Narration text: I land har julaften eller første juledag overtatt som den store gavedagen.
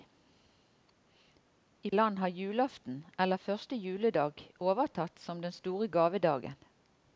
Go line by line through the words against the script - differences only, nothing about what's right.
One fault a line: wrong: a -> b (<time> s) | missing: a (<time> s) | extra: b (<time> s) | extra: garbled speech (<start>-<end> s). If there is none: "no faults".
no faults